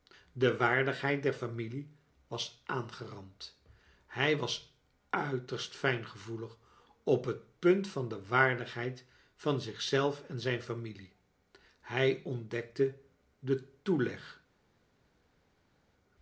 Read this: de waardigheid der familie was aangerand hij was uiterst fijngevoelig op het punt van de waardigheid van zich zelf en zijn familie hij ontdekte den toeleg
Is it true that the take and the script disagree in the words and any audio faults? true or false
false